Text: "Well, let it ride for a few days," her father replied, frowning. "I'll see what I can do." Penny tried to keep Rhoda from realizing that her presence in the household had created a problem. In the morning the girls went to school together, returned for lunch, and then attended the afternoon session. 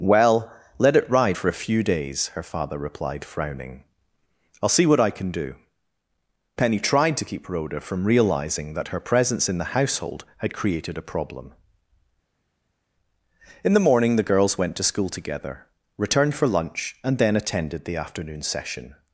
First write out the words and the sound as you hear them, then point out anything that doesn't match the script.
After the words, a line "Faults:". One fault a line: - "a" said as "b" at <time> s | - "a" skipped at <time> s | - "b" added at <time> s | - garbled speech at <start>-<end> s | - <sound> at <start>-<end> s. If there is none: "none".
"Well, let it ride for a few days," her father replied, frowning. "I'll see what I can do." Penny tried to keep Rhoda from realizing that her presence in the household had created a problem. In the morning the girls went to school together, returned for lunch, and then attended the afternoon session.
Faults:
none